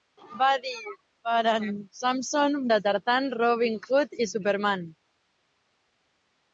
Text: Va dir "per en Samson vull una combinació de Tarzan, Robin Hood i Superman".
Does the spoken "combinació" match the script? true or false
false